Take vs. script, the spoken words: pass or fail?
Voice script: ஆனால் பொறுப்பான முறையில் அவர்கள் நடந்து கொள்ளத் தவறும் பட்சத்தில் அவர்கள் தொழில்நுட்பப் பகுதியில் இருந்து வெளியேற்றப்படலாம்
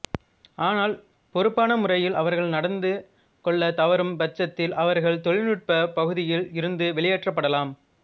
pass